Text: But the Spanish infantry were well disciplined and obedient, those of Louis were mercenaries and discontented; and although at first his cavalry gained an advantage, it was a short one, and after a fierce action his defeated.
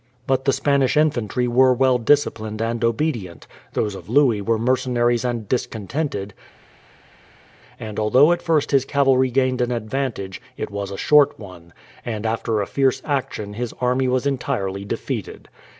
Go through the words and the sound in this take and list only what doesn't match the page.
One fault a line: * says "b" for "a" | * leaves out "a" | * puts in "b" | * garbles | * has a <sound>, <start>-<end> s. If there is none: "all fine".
* puts in "army was entirely"